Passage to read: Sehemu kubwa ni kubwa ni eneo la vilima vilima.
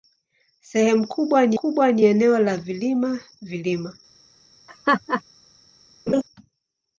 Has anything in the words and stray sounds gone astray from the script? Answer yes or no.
yes